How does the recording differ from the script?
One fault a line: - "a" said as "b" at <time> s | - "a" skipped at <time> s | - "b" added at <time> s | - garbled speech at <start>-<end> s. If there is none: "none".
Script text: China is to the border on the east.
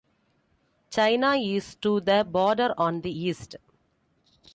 none